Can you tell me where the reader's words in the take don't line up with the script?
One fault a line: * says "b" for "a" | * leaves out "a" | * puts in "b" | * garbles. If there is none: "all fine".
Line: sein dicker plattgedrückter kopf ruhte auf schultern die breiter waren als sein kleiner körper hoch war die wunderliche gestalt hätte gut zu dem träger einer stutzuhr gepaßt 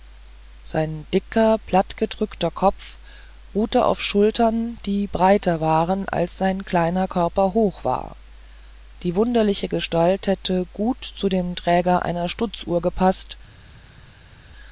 all fine